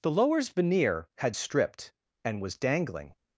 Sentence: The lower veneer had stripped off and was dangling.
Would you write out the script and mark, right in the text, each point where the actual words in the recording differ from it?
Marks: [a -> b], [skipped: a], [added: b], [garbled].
The [lower -> lowers] veneer had stripped [skipped: off] and was dangling.